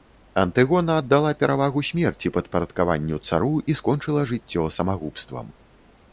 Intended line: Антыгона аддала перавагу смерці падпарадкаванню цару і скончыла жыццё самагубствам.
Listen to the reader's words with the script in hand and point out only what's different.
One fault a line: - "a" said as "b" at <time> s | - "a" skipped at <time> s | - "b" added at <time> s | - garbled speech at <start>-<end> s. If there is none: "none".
none